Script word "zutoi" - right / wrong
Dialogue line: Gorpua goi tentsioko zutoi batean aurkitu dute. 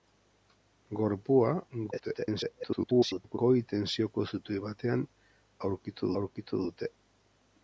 right